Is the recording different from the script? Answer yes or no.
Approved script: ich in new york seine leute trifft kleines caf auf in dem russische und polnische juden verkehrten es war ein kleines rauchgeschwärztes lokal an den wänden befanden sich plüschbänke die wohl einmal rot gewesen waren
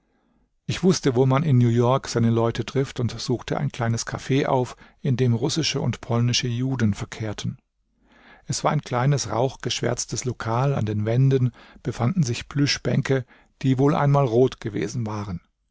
yes